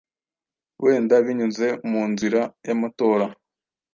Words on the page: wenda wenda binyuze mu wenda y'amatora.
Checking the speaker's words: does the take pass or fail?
fail